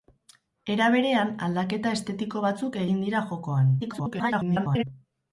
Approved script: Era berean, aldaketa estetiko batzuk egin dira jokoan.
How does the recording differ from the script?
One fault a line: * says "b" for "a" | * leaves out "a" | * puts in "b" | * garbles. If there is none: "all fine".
* garbles